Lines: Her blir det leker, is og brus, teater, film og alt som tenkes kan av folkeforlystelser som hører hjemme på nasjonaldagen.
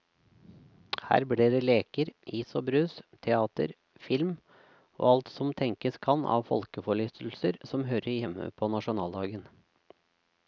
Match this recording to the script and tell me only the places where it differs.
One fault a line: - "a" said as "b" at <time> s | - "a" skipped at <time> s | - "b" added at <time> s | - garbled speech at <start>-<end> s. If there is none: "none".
none